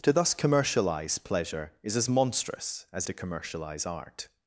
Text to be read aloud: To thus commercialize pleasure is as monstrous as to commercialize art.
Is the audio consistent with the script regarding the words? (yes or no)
yes